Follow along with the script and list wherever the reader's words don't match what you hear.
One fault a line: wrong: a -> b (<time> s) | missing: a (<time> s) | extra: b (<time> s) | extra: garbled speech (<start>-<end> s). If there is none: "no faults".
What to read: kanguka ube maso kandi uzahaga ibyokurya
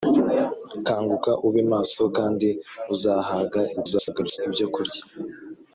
extra: garbled speech (3.8-4.4 s)